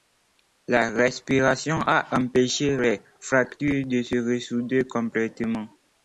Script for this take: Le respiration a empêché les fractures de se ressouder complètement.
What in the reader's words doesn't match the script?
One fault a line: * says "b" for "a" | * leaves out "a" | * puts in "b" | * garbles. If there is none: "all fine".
* says "La" for "Le"